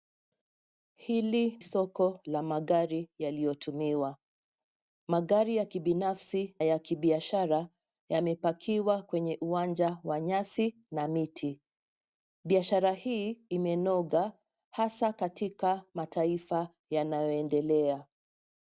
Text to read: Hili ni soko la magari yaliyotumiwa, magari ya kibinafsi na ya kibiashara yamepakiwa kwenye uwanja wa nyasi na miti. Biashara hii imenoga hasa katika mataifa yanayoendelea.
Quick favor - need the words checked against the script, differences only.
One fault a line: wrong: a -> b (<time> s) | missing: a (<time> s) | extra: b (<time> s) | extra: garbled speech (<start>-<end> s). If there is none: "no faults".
missing: ni (1.6 s)
missing: na (6.6 s)